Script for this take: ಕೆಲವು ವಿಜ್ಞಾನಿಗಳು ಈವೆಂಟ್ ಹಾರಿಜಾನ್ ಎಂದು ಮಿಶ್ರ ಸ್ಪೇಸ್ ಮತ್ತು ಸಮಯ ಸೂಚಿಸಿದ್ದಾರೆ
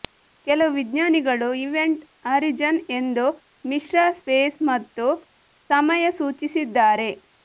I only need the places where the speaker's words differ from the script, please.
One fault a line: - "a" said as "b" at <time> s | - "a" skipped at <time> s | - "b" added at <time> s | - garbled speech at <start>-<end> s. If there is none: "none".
none